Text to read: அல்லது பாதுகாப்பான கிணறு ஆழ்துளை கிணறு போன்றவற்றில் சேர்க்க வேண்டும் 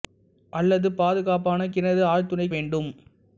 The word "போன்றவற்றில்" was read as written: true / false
false